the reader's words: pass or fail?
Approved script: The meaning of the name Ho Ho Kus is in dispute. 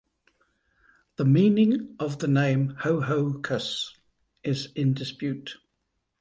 pass